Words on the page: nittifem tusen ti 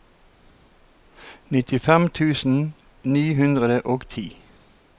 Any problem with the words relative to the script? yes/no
yes